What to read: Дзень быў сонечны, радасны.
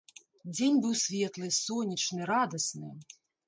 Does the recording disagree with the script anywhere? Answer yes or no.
yes